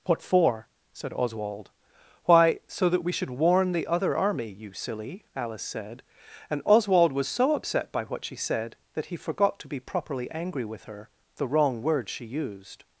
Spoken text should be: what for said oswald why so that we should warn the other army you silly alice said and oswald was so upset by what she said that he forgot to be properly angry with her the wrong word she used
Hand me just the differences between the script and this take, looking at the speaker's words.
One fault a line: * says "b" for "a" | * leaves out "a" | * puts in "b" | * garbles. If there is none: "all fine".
all fine